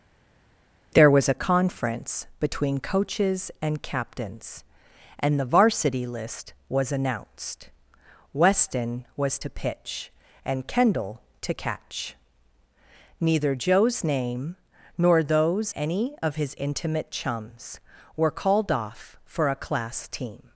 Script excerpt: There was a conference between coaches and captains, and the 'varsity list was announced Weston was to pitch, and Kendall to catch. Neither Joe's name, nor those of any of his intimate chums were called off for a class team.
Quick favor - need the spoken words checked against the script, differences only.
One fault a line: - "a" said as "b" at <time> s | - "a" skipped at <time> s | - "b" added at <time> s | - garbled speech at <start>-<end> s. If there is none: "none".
- "of" skipped at 15.7 s